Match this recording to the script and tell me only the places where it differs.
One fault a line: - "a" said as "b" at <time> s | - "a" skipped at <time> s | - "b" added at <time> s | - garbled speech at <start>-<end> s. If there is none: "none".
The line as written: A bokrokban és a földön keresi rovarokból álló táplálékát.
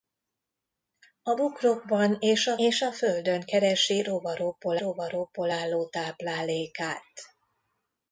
- "és a" added at 2.6 s
- "rovarokból" added at 4.8 s